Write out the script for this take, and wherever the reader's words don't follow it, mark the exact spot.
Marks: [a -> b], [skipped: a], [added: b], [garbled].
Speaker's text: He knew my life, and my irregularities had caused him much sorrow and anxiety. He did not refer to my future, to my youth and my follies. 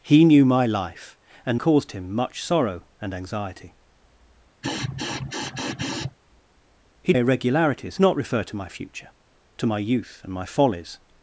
He knew my life, and [skipped: my irregularities had] caused him much sorrow and anxiety. He [did -> irregularities] not refer to my future, to my youth and my follies.